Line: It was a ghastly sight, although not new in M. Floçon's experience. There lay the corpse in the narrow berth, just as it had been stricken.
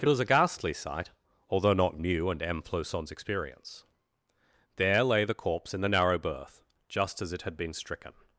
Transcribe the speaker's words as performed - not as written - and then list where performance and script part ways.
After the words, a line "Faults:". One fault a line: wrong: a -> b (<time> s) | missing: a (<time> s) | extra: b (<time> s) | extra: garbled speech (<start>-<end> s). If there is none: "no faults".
It was a ghastly sight, although not new and M. Floçon's experience. There lay the corpse in the narrow berth, just as it had been stricken.
Faults:
wrong: in -> and (2.3 s)